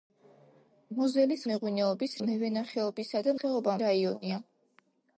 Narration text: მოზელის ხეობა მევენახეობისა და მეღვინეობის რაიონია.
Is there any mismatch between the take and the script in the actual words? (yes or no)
yes